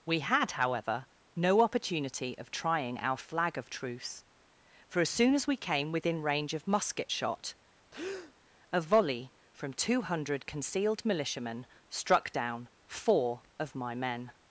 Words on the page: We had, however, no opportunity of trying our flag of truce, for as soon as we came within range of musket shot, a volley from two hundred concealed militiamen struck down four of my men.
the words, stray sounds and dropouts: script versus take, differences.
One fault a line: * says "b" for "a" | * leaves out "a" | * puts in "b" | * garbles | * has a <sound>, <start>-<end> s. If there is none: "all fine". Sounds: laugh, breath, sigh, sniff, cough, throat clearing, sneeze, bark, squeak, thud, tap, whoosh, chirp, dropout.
* has a breath, 7.9-8.3 s